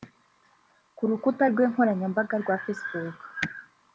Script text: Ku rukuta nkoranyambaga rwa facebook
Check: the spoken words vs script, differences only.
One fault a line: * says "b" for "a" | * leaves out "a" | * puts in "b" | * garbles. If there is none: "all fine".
* puts in "rwe"